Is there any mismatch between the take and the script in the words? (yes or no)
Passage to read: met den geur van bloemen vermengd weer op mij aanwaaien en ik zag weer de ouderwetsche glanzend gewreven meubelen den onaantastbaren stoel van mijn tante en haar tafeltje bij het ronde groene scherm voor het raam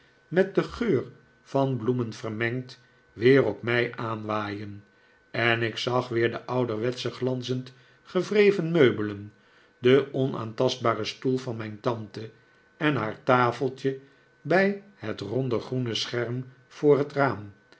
no